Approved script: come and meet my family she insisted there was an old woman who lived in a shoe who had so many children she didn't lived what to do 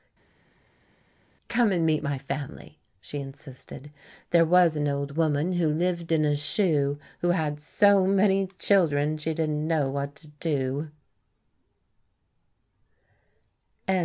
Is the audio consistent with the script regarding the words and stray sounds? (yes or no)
no